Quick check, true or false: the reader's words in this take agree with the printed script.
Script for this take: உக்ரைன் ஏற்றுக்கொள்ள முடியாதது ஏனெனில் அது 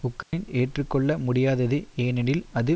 true